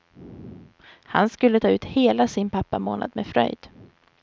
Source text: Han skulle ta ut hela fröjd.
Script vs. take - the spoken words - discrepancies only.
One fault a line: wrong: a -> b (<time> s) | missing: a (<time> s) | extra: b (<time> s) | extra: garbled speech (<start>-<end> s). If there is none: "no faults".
extra: sin pappamånad med (2.3 s)